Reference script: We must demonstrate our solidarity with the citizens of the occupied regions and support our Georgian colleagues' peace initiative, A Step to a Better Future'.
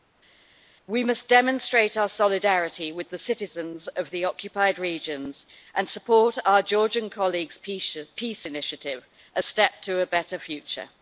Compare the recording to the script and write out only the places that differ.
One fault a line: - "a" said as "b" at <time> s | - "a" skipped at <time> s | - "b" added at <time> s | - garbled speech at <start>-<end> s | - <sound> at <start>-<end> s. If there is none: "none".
none